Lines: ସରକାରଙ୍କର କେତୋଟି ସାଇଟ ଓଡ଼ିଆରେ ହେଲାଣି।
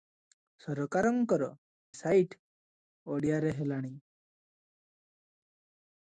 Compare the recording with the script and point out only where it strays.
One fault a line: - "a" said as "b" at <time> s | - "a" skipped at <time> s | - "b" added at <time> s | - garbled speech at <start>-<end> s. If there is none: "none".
- "କେତୋଟି" skipped at 1.5 s